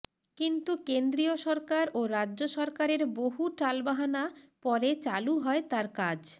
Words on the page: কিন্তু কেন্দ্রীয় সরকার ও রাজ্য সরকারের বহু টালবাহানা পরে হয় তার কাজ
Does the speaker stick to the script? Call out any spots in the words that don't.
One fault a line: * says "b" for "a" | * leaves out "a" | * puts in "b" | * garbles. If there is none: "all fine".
* puts in "চালু"